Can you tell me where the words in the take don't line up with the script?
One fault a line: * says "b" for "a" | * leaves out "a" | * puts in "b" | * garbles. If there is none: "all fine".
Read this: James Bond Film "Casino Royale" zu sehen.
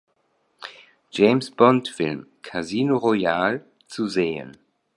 all fine